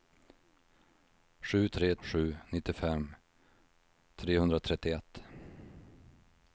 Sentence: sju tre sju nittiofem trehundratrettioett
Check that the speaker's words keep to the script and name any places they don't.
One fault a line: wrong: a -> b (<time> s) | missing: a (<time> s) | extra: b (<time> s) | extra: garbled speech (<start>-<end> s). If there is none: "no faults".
no faults